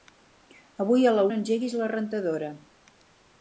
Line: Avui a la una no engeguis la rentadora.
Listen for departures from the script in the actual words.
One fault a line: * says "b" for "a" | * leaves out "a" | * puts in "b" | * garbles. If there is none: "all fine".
* leaves out "una"